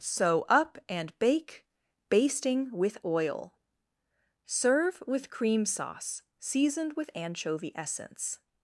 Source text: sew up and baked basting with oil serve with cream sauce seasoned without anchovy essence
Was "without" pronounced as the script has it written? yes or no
no